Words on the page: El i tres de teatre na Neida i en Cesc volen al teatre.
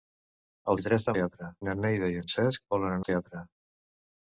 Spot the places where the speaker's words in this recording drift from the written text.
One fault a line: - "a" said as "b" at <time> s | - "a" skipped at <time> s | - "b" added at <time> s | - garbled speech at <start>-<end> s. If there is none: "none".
none